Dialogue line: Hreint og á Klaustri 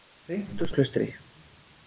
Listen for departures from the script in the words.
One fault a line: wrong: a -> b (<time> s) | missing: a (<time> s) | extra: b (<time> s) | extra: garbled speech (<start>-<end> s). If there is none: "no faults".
no faults